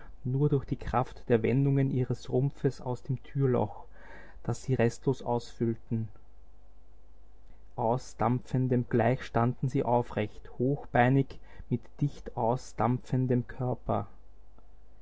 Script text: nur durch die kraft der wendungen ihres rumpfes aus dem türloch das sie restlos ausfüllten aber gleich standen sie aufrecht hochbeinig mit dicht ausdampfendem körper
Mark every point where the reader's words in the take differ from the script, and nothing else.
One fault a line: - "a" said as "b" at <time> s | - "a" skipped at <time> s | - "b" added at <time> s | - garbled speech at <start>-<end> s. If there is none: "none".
- "aber" said as "ausdampfendem" at 7.8 s